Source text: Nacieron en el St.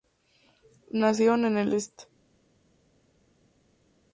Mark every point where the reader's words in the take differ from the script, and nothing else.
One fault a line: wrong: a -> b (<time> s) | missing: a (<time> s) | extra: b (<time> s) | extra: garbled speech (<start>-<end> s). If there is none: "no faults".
no faults